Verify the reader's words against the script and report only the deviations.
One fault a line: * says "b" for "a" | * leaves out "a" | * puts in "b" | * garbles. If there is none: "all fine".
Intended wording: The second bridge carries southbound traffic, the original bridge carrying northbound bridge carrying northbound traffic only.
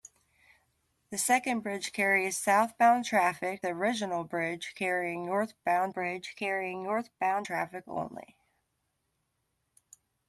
all fine